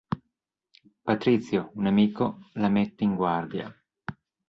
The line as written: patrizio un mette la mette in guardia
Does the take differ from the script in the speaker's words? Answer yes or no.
yes